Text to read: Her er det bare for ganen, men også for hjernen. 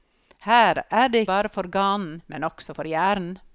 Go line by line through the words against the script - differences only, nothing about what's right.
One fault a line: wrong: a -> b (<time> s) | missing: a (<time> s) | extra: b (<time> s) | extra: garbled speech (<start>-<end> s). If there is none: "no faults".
no faults